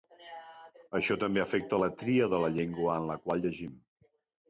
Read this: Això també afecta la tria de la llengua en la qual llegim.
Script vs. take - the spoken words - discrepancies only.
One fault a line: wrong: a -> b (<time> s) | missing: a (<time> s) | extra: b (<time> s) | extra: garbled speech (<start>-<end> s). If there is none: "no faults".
no faults